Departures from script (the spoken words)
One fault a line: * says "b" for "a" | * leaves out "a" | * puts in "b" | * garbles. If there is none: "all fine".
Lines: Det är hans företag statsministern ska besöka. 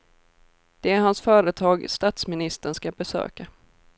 all fine